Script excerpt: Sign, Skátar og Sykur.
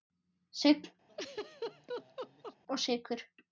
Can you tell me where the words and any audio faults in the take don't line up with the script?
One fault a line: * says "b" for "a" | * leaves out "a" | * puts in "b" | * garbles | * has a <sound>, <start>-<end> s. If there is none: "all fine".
* leaves out "Skátar"
* has a laugh, 1.1-2.6 s